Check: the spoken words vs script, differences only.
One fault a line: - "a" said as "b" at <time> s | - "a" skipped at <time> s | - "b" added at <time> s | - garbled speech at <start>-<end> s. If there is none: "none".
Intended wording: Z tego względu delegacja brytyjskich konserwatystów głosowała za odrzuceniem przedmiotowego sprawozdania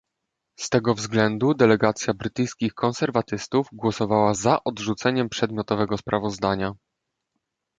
none